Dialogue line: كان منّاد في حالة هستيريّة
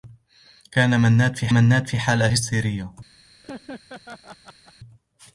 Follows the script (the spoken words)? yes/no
no